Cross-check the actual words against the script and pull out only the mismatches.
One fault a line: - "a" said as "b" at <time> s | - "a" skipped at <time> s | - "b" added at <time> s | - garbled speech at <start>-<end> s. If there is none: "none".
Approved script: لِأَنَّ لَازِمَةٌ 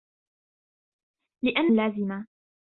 none